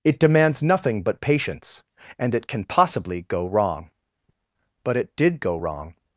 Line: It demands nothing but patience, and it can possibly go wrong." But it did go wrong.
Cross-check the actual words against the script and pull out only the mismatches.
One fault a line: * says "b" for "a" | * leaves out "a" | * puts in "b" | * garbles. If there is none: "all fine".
all fine